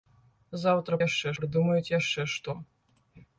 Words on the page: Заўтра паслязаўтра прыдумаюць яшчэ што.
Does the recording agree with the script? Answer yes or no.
no